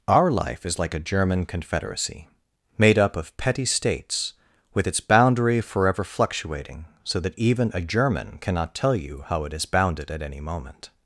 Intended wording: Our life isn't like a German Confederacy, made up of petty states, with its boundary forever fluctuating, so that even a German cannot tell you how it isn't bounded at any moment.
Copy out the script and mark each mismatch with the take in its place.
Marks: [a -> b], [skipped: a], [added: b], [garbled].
Our life [isn't -> is] like a German Confederacy, made up of petty states, with its boundary forever fluctuating, so that even a German cannot tell you how it [isn't -> is] bounded at any moment.